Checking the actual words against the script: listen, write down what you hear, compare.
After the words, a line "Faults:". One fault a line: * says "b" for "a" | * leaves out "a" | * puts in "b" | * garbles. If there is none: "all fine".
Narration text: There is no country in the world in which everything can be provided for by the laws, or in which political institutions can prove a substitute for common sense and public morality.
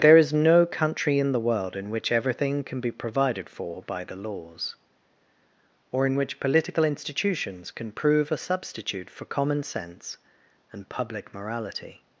There is no country in the world in which everything can be provided for by the laws, or in which political institutions can prove a substitute for common sense and public morality.
Faults:
all fine